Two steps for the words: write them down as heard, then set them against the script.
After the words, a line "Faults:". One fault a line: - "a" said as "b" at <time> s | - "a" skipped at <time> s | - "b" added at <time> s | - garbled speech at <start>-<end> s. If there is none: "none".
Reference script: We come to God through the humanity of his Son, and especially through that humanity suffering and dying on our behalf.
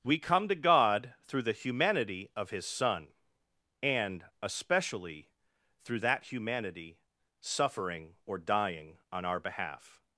We come to God through the humanity of his Son, and especially through that humanity suffering or dying on our behalf.
Faults:
- "and" said as "or" at 8.2 s